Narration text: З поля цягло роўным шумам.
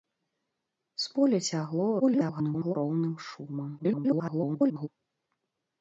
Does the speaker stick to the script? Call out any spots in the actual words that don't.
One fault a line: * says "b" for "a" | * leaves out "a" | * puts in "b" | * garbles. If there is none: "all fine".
* garbles
* garbles